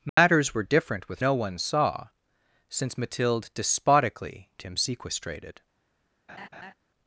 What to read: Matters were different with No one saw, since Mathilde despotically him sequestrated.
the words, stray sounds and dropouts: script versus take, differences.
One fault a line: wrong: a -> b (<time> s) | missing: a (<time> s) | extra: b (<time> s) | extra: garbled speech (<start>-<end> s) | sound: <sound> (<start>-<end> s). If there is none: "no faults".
sound: dropout (0.1-0.2 s)
sound: laugh (6.3-6.7 s)